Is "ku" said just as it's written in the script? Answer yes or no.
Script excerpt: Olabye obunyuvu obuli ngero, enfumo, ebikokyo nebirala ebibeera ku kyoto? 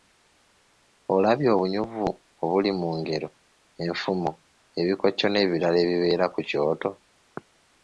yes